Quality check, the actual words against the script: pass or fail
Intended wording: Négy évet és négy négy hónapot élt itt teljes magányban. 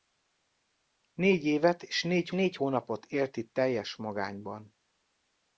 pass